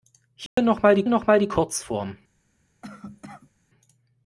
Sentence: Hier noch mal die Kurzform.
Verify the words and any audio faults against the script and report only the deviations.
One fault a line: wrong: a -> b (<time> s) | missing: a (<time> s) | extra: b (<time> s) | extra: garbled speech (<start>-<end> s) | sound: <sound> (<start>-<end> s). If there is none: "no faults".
sound: dropout (0.5-0.6 s)
extra: noch mal die (1.1 s)
sound: cough (2.8-3.5 s)